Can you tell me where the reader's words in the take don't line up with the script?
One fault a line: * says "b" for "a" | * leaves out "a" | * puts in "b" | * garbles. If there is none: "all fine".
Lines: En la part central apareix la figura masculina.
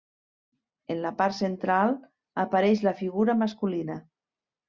all fine